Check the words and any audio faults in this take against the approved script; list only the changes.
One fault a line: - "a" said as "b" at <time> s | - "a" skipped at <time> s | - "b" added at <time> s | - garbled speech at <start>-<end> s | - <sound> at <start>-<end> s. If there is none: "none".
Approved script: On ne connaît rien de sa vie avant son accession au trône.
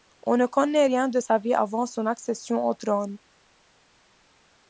none